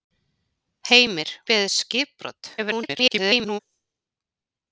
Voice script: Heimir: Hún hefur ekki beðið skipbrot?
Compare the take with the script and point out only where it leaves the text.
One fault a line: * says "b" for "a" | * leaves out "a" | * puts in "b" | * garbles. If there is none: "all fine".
* leaves out "Hún hefur ekki"
* garbles